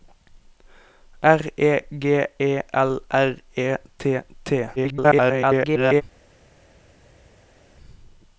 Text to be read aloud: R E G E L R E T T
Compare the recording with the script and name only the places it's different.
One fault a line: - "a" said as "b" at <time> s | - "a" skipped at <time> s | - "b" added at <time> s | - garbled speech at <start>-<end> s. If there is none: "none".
- garbled speech at 4.8-6.0 s